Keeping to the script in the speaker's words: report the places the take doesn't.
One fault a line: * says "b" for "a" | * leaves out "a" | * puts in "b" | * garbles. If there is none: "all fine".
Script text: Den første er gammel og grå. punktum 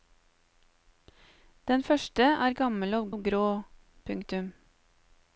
* puts in "og"